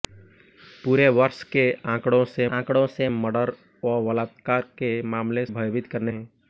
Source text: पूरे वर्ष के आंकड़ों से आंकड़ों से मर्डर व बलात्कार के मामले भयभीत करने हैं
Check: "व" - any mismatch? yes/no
no